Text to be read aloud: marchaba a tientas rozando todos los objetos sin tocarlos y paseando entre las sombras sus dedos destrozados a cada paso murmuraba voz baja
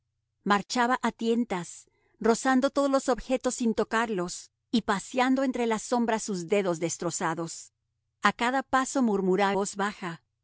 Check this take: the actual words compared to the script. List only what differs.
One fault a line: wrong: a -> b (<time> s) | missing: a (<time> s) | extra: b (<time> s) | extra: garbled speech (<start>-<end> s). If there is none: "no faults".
no faults